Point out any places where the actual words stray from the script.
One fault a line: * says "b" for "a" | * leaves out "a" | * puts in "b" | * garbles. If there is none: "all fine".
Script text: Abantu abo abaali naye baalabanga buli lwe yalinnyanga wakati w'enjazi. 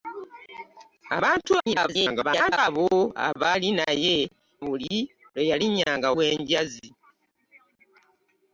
* garbles
* leaves out "baalabanga"
* leaves out "wakati"